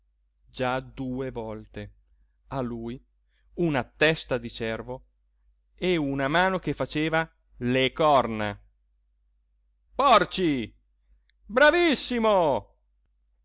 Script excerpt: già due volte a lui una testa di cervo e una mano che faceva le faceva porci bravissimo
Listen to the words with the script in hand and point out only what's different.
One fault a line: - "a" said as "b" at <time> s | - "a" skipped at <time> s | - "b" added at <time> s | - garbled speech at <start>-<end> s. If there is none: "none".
- "faceva" said as "corna" at 7.9 s